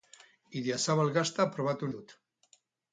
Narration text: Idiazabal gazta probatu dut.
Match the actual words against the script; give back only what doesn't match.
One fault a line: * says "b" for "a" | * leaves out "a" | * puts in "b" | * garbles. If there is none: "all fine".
all fine